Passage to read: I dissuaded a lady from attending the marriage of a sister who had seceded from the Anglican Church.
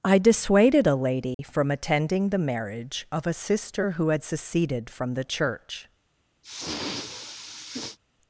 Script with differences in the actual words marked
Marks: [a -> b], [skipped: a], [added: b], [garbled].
I dissuaded a lady from attending the marriage of a sister who had seceded from the [skipped: Anglican] Church.